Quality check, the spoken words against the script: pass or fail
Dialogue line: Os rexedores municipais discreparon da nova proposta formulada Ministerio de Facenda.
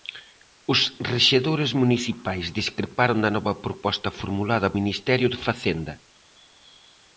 pass